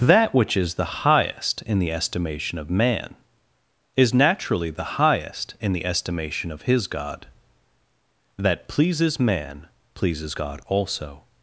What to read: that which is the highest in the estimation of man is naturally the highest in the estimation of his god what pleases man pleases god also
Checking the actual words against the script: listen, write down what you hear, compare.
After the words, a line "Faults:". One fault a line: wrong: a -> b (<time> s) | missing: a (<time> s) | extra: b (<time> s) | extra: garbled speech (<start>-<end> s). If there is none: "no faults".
that which is the highest in the estimation of man is naturally the highest in the estimation of his god that pleases man pleases god also
Faults:
wrong: what -> that (8.3 s)